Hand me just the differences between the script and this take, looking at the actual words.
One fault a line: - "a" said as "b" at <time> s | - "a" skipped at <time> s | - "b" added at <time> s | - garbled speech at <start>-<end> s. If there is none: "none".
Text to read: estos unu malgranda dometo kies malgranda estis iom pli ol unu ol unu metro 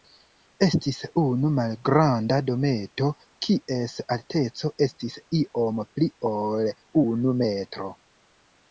- "estos" said as "estis" at 0.7 s
- "malgranda" said as "alteco" at 4.2 s
- "ol unu" skipped at 7.4 s